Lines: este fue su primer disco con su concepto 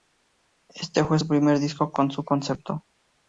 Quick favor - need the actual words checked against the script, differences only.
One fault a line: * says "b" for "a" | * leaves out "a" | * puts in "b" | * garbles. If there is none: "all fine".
all fine